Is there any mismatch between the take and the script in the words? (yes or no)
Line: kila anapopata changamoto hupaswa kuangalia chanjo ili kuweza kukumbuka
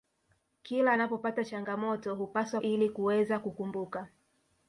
yes